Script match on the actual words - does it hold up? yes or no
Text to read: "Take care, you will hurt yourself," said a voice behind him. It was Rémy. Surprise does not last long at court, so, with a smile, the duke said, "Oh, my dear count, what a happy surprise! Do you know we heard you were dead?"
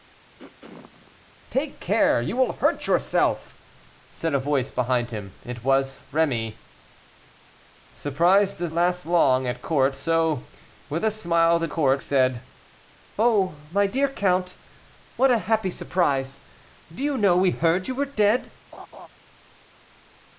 no